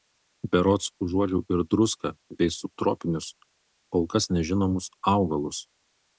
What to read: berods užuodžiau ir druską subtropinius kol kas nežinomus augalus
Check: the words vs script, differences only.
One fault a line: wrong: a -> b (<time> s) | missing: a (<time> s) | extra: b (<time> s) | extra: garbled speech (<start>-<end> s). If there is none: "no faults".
extra: bei (2.4 s)